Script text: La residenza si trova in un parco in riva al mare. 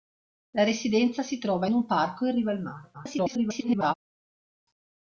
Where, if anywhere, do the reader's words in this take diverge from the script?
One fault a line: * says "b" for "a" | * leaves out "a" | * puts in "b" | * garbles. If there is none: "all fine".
* garbles